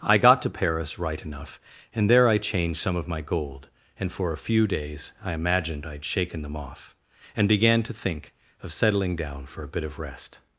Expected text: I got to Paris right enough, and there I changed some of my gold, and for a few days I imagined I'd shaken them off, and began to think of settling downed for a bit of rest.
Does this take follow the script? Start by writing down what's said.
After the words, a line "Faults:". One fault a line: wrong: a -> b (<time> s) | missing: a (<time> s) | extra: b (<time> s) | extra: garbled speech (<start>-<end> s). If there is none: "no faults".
I got to Paris right enough, and there I changed some of my gold, and for a few days I imagined I'd shaken them off, and began to think of settling down for a bit of rest.
Faults:
wrong: downed -> down (9.1 s)